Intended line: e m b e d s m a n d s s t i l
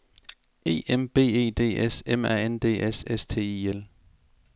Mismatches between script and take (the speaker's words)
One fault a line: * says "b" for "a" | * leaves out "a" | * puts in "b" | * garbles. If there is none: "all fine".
all fine